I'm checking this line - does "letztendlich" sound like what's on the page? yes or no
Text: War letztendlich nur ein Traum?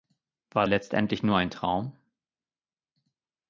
yes